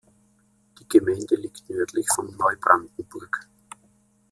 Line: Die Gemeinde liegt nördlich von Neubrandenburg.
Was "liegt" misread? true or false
false